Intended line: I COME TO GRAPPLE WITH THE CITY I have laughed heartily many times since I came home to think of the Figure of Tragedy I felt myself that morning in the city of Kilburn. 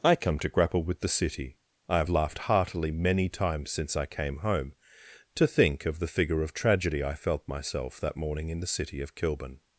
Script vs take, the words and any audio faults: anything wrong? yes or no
no